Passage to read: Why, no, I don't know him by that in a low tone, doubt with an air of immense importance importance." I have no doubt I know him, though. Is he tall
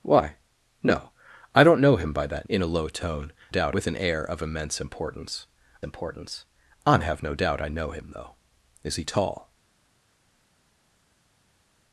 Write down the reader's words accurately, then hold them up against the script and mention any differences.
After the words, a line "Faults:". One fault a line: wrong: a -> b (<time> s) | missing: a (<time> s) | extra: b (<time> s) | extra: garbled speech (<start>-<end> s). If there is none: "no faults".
Why, no, I don't know him by that in a low tone, doubt with an air of immense importance importance." I have no doubt I know him, though. Is he tall
Faults:
no faults